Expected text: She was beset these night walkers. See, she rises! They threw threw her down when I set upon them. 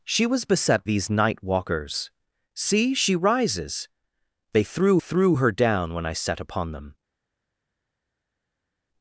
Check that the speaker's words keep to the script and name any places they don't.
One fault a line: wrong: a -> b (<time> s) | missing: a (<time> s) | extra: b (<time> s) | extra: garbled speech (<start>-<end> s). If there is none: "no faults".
no faults